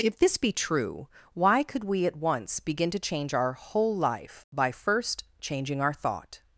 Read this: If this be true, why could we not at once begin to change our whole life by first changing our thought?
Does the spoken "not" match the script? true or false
false